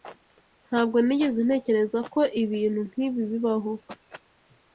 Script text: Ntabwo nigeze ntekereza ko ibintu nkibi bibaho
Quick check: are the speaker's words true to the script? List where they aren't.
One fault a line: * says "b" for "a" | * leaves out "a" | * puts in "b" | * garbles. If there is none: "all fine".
all fine